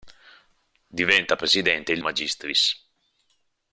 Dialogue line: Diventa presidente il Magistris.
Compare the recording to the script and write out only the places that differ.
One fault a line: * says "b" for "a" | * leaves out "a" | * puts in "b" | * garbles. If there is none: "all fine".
all fine